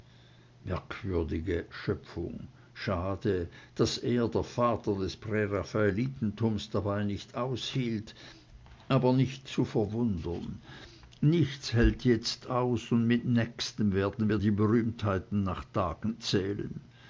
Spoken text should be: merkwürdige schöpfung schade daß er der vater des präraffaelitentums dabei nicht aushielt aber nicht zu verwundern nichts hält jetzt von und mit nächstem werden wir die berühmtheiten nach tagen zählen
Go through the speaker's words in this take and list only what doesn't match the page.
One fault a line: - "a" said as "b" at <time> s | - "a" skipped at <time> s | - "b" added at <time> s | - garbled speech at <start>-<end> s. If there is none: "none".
- "von" said as "aus" at 12.5 s